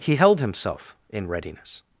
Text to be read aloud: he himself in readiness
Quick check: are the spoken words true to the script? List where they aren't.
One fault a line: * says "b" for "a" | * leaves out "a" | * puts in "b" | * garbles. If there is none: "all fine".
* puts in "held"